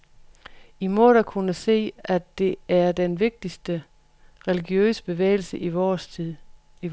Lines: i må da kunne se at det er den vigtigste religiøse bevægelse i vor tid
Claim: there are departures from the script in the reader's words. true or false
false